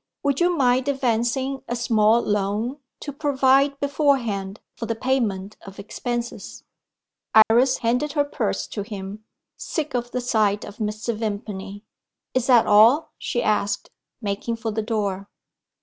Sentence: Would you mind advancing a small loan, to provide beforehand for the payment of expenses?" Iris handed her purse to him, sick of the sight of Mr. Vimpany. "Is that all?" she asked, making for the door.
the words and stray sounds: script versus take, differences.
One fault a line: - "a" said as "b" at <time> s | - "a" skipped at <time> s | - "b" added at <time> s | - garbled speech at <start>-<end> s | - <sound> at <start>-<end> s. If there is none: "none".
- dropout at 7.4-7.5 s